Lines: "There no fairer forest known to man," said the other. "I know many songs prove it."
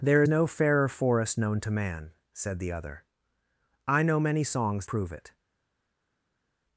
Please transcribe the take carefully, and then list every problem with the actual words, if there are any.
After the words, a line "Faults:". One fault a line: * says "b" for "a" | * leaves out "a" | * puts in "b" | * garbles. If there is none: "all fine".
"There no fairer forest known to man," said the other. "I know many songs prove it."
Faults:
all fine